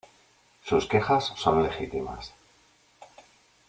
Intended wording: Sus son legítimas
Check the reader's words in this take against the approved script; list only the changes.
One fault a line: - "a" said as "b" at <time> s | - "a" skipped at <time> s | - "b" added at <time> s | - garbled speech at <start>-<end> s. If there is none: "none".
- "quejas" added at 0.8 s